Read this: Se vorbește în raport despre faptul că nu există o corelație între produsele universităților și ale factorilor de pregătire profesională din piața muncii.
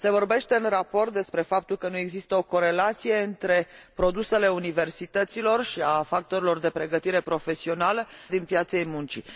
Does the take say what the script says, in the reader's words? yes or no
yes